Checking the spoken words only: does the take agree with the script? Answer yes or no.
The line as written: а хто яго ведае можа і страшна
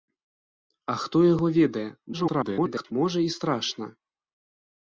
no